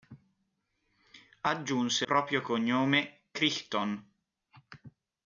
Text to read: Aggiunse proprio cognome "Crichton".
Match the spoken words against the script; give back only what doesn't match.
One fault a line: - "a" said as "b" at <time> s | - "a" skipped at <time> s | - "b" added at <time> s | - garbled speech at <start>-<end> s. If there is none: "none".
none